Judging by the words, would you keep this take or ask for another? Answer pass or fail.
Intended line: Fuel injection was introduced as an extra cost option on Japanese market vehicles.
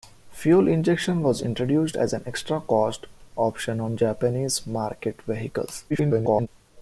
fail